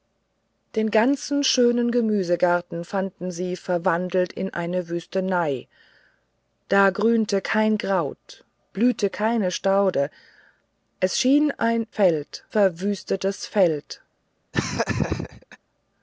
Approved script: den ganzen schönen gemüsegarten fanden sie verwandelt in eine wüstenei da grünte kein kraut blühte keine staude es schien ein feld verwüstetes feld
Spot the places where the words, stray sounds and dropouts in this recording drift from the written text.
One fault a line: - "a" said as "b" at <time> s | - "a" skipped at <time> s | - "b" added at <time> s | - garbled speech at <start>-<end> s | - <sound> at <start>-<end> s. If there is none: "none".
- laugh at 14.5-15.6 s